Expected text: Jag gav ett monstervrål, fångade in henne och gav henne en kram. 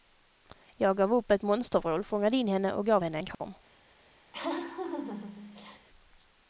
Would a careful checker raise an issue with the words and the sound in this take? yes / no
yes